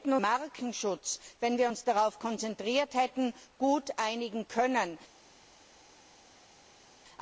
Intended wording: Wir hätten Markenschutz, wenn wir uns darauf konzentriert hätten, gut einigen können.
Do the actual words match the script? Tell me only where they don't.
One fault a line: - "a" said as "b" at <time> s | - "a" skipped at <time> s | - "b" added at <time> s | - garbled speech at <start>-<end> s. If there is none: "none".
none